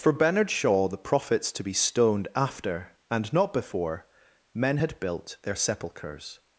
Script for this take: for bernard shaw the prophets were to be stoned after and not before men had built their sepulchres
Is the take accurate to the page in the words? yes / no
no